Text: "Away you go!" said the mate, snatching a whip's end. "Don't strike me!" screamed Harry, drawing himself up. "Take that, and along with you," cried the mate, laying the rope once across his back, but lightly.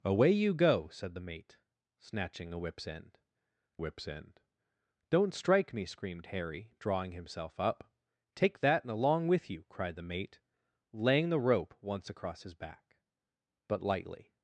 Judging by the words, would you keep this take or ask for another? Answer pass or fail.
fail